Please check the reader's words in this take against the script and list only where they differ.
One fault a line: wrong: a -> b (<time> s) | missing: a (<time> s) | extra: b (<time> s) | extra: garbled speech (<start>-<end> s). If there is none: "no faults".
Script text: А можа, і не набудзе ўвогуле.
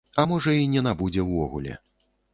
no faults